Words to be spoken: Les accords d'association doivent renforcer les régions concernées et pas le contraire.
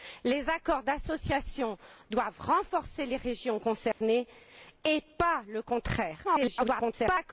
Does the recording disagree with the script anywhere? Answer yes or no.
yes